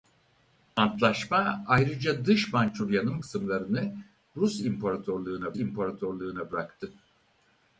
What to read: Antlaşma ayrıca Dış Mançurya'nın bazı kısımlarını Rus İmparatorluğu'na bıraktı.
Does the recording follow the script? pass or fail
fail